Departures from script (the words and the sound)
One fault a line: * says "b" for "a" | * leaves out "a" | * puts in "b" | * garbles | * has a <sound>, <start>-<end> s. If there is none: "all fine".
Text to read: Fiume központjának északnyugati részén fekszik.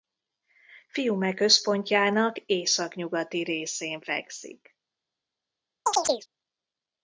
* has a chirp, 5.9-6.3 s